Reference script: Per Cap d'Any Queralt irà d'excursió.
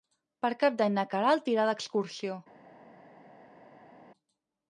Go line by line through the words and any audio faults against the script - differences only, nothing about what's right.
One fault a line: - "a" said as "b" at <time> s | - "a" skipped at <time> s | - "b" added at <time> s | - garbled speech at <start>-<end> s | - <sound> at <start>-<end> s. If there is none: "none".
- "na" added at 0.9 s